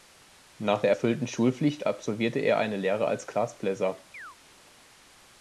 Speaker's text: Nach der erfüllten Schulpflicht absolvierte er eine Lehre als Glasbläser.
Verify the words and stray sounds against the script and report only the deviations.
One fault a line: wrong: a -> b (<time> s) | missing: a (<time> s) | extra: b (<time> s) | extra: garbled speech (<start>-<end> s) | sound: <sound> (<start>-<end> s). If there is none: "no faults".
sound: chirp (4.1-4.4 s)